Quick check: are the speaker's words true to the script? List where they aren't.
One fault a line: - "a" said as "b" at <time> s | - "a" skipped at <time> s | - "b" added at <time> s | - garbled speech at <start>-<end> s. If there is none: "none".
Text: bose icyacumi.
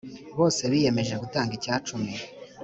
- "biyemeje gutanga" added at 0.7 s